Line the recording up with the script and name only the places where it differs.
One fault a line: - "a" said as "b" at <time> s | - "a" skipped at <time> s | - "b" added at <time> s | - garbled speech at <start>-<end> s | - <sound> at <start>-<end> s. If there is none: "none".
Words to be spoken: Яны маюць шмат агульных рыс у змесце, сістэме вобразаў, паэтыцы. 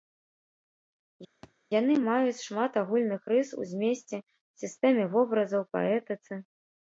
- thud at 1.4-1.5 s